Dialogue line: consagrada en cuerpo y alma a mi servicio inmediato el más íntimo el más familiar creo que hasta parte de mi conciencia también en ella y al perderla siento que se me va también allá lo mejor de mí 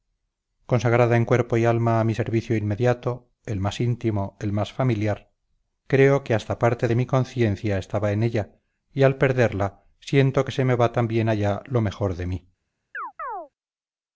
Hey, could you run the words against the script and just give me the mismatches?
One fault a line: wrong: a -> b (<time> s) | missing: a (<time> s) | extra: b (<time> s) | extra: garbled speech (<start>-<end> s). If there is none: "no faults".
wrong: también -> estaba (7.8 s)